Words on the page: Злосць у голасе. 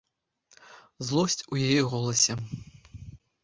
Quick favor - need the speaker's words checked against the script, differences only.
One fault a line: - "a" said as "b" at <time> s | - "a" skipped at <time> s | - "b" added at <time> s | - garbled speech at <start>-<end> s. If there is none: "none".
- "яе" added at 1.7 s